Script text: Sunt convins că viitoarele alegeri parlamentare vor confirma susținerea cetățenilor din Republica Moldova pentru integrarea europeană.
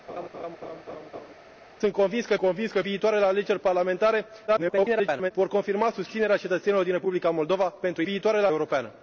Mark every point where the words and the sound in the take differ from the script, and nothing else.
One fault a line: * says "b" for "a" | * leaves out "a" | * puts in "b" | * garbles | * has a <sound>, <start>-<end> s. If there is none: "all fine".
* has a laugh, 0.1-1.3 s
* puts in "convins că"
* garbles
* says "viitoarele" for "integrarea"